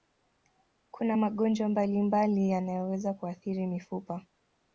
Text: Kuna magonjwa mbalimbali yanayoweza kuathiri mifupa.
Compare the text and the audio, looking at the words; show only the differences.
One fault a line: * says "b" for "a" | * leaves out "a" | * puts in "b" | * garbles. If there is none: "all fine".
all fine